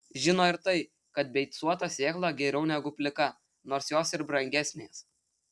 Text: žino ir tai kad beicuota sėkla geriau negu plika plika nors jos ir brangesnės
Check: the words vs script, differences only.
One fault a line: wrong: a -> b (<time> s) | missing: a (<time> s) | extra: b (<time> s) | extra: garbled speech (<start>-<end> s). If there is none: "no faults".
missing: plika (3.3 s)